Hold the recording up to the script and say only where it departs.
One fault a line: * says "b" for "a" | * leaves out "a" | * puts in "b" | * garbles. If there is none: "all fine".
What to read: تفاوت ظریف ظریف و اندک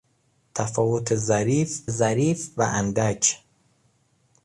all fine